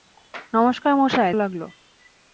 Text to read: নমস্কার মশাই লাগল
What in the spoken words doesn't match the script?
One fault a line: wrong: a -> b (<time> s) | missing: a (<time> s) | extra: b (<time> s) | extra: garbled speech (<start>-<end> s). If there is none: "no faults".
no faults